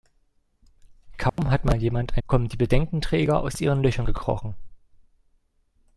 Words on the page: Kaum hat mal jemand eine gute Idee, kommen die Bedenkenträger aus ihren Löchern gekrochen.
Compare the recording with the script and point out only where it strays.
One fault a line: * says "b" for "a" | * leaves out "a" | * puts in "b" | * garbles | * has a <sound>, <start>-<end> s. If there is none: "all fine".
* has a dropout, 1.3-1.4 s
* leaves out "eine gute Idee"